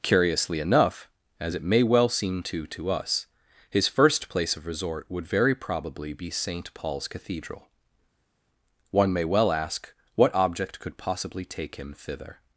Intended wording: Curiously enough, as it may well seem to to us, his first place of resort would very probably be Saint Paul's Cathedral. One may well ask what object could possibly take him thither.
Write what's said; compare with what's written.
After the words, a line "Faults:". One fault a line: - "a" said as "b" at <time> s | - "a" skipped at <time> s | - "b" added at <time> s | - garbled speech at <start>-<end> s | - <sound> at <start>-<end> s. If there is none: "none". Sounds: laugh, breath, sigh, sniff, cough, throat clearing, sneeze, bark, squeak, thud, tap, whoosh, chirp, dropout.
Curiously enough, as it may well seem to to us, his first place of resort would very probably be Saint Paul's Cathedral. One may well ask what object could possibly take him thither.
Faults:
none